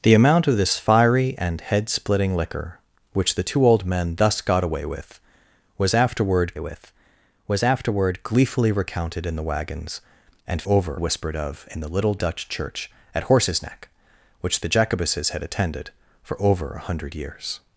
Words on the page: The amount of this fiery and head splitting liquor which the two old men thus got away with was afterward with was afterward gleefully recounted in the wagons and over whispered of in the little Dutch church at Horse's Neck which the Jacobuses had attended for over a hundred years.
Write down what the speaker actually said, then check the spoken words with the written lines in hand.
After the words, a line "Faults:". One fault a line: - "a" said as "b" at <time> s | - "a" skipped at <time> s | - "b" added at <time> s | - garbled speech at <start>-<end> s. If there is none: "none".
The amount of this fiery and head splitting liquor which the two old men thus got away with was afterward with was afterward gleefully recounted in the wagons and over whispered of in the little Dutch church at Horse's Neck which the Jacobuses had attended for over a hundred years.
Faults:
none